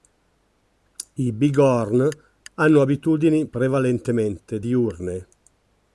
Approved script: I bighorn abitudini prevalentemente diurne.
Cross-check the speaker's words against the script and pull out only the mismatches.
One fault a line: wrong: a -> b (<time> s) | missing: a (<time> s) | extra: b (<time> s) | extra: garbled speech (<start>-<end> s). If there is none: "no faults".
extra: hanno (2.5 s)